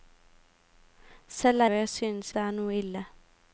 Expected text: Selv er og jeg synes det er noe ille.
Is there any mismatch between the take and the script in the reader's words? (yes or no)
no